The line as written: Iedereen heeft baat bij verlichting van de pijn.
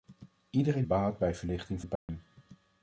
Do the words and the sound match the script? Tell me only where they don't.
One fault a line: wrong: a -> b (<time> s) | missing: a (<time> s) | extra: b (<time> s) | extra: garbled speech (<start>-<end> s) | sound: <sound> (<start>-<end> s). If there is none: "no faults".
missing: heeft (0.8 s)
missing: van (1.8 s)
sound: dropout (2.0-2.1 s)